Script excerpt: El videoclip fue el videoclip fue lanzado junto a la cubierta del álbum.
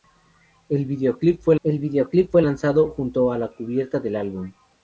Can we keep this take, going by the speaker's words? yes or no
yes